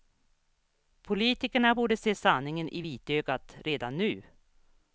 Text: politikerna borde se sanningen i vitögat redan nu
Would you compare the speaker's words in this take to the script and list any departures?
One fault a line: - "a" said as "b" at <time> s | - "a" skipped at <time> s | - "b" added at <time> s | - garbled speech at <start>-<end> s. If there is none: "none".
none